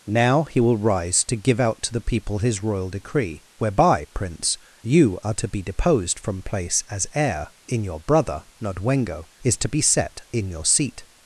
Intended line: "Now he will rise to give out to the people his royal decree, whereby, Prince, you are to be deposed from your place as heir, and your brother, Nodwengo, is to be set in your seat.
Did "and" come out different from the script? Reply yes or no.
yes